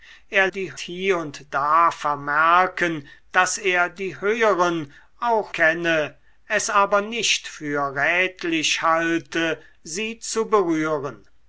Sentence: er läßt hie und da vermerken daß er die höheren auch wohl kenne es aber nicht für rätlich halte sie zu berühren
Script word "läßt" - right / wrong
wrong